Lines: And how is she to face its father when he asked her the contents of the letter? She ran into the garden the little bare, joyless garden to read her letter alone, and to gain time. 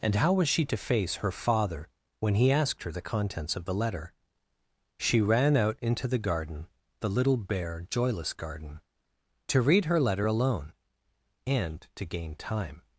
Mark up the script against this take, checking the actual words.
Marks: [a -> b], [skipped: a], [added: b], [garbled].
And how [is -> was] she to face [its -> her] father when he asked her the contents of the letter? She ran [added: out] into the garden the little bare, joyless garden to read her letter alone, and to gain time.